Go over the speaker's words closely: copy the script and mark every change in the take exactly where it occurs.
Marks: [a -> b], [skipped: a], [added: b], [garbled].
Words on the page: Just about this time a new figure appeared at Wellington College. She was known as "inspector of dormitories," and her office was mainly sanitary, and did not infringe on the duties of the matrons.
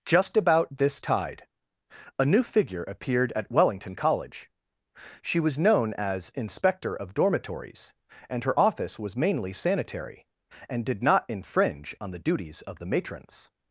Just about this [time -> tide] a new figure appeared at Wellington College. She was known as "inspector of dormitories," and her office was mainly sanitary, and did not infringe on the duties of the matrons.